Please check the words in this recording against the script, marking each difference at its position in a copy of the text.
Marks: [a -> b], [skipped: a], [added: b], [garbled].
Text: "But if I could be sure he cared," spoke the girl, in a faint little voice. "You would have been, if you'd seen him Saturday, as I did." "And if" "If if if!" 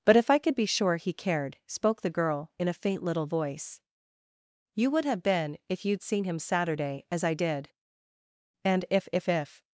"But if I could be sure he cared," spoke the girl, in a faint little voice. "You would have been, if you'd seen him Saturday, as I did." "And if" "If if [skipped: if!"]